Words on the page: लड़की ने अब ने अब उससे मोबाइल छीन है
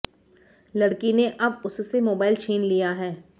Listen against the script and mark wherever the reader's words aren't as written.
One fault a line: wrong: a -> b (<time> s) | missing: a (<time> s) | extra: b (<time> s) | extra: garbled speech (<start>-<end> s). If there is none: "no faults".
missing: ने अब (1.6 s)
extra: लिया (2.6 s)